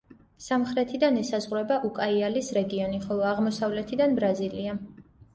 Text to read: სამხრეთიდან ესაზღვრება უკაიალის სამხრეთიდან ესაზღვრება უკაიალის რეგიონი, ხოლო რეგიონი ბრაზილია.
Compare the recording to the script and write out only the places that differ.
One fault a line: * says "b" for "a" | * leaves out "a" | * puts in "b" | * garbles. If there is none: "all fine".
* leaves out "სამხრეთიდან ესაზღვრება უკაიალის"
* says "აღმოსავლეთიდან" for "რეგიონი"